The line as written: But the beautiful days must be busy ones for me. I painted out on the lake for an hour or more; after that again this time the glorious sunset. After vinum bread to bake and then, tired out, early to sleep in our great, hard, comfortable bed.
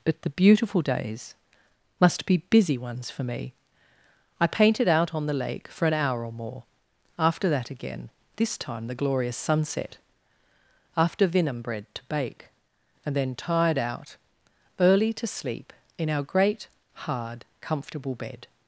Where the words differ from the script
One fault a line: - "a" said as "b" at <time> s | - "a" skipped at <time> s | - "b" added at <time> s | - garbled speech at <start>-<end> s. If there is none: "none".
none